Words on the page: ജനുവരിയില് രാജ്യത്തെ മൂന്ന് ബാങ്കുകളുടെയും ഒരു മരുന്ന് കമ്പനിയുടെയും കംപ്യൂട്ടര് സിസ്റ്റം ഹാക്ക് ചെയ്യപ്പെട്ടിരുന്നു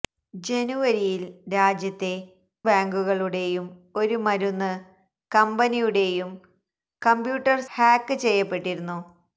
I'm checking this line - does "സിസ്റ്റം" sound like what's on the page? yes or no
no